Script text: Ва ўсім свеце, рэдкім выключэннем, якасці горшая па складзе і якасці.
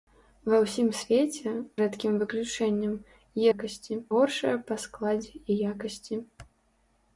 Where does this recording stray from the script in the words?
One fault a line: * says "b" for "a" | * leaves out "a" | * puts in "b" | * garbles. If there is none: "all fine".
all fine